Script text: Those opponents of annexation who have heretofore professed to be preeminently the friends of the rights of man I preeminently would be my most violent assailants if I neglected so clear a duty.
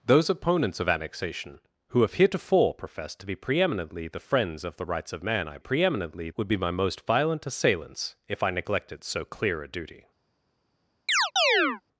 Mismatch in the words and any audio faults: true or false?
true